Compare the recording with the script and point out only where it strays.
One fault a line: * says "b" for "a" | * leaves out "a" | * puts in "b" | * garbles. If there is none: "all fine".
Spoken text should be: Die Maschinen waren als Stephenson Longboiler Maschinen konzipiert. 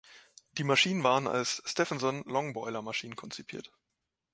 all fine